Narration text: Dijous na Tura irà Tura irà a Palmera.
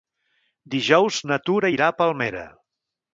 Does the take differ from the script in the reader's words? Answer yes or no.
yes